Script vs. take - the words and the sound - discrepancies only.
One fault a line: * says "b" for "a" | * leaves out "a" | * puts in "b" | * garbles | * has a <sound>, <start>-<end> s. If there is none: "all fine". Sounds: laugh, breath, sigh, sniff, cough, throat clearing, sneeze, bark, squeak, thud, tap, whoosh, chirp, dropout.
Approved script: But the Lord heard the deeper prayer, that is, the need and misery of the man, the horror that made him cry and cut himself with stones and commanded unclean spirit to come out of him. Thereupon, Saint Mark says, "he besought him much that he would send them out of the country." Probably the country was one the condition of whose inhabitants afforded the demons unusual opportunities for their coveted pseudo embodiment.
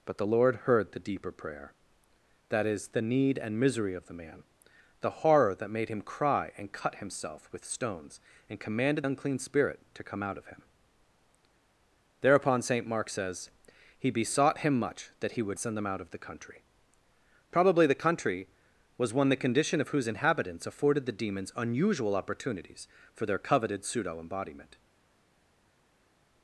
all fine